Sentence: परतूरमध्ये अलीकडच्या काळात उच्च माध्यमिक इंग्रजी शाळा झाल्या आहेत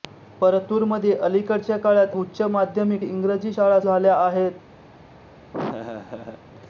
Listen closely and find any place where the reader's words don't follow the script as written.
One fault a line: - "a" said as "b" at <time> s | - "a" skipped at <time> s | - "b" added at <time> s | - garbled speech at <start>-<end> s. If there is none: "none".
none